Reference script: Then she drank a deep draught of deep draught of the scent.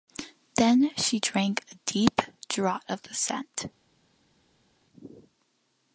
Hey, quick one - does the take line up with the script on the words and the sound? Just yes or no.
no